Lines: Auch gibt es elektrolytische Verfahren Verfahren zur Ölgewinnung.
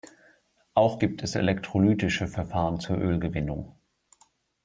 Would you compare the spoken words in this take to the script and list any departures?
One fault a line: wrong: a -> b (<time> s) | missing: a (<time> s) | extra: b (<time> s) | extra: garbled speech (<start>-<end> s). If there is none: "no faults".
missing: Verfahren (2.8 s)